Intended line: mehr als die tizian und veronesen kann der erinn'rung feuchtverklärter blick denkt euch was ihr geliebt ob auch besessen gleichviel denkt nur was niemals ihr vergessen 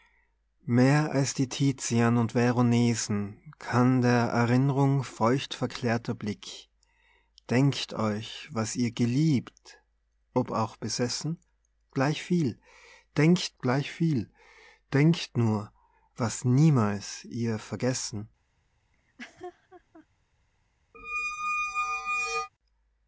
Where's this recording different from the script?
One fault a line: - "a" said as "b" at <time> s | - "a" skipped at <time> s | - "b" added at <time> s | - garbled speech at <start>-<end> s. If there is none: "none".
- "gleichviel denkt" added at 13.6 s